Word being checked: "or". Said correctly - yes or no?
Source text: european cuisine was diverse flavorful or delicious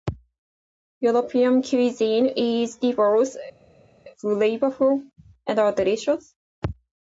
no